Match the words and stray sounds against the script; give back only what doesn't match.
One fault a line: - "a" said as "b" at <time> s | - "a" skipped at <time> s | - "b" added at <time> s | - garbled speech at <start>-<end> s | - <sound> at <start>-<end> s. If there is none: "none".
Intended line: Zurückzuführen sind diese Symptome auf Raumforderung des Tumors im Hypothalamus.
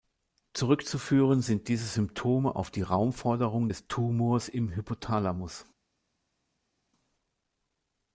- "die" added at 2.7 s